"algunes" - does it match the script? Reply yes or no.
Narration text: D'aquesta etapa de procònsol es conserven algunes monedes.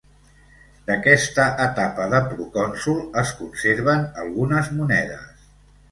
yes